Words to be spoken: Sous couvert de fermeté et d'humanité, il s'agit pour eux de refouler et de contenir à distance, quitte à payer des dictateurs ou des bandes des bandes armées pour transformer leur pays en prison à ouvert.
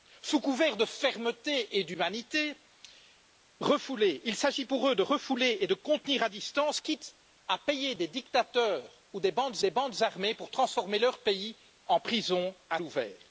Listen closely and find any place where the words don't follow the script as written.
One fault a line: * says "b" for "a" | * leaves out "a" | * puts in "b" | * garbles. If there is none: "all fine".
all fine